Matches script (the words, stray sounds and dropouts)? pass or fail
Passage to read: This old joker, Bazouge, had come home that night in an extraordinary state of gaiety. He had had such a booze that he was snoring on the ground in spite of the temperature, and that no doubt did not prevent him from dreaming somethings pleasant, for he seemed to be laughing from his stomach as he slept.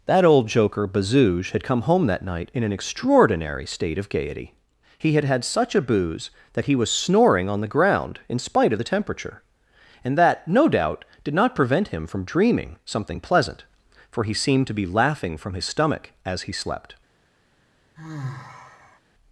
fail